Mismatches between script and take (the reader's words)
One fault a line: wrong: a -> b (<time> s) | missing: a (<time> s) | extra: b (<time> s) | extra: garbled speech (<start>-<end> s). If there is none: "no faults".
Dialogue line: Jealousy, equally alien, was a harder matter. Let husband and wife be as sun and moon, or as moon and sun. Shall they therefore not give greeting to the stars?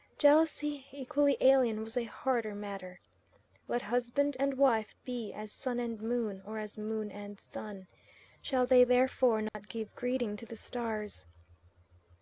no faults